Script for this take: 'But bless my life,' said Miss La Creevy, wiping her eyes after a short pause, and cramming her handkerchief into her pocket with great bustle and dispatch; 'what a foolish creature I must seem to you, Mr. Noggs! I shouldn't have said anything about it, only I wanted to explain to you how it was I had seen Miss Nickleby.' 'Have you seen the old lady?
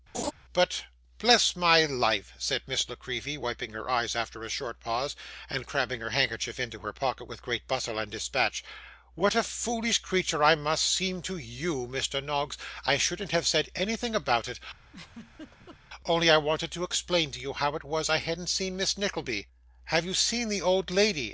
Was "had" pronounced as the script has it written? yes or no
no